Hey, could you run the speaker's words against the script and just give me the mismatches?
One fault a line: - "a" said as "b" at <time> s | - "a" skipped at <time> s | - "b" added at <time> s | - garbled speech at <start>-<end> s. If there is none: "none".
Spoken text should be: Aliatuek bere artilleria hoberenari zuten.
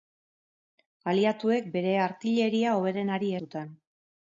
none